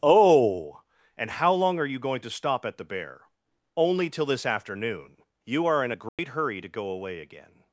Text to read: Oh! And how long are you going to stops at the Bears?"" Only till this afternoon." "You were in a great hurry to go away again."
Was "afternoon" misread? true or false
false